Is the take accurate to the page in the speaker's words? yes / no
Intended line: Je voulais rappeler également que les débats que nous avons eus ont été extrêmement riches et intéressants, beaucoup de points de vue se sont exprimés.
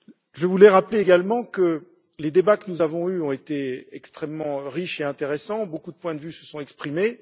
yes